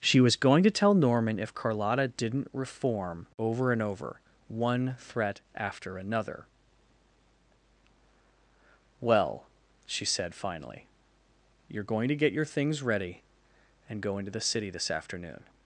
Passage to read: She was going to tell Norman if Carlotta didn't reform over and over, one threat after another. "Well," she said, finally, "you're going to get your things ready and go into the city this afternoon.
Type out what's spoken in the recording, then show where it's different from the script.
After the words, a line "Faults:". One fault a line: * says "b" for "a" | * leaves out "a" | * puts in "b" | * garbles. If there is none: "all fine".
She was going to tell Norman if Carlotta didn't reform over and over, one threat after another. "Well," she said, finally, "you're going to get your things ready and go into the city this afternoon.
Faults:
all fine